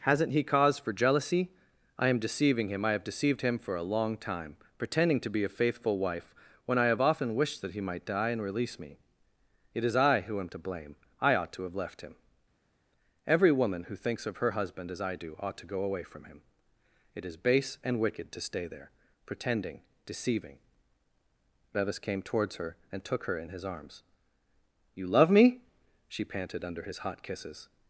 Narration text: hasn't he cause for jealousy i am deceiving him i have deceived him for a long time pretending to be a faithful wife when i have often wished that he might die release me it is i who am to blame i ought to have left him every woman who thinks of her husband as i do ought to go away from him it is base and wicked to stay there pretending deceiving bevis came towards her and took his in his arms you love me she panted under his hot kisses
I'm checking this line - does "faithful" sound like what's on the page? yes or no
yes